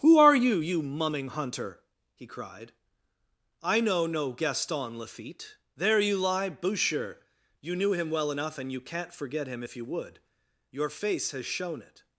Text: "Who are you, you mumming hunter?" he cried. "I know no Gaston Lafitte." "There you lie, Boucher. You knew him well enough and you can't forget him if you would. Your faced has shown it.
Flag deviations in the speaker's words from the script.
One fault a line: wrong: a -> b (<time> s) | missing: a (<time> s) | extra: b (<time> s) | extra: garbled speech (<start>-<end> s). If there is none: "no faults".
wrong: faced -> face (10.9 s)